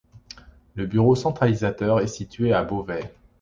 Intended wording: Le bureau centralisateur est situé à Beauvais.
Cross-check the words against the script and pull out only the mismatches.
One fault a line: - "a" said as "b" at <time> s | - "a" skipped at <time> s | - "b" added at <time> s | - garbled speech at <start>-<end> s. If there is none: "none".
none